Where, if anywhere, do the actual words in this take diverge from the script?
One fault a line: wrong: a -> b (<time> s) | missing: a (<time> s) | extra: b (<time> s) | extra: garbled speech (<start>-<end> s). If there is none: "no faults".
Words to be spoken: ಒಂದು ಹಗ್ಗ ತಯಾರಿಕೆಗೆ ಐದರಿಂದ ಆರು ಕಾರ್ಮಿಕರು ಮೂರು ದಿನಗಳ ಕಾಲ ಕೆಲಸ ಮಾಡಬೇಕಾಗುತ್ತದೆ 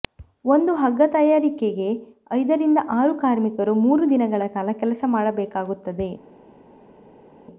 no faults